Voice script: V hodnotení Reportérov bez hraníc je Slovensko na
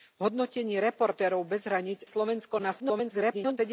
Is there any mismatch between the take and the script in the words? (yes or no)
yes